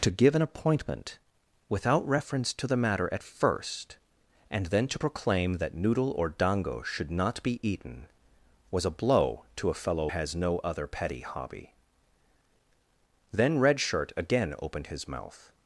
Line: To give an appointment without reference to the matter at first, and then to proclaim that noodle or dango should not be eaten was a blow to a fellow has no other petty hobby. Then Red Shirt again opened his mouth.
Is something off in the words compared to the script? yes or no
no